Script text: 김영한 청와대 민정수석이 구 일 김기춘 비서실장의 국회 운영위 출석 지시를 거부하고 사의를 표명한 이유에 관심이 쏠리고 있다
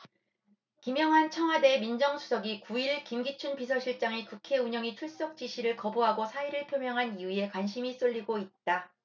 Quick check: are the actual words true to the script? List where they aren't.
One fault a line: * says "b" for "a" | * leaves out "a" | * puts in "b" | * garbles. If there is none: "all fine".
all fine